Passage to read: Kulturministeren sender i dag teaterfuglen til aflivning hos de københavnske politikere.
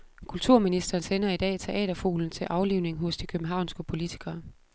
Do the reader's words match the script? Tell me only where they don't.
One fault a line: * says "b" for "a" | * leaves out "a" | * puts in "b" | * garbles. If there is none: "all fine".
all fine